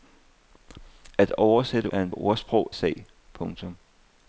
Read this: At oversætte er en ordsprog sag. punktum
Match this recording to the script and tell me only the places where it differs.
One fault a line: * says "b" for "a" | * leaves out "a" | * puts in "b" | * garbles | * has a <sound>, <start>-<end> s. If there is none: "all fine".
all fine